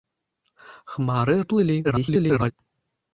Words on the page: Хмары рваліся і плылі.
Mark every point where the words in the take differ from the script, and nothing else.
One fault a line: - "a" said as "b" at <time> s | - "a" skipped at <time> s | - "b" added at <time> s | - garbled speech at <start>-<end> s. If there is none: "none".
- "рваліся" skipped at 1.4 s
- garbled speech at 1.8-2.5 s